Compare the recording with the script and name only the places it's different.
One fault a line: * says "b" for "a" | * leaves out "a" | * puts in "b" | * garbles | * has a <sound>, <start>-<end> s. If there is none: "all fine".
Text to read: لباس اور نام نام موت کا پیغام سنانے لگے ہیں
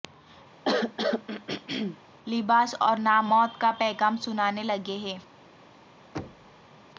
* has a throat clearing, 0.6-2.0 s
* leaves out "نام"
* has a thud, 6.1-6.7 s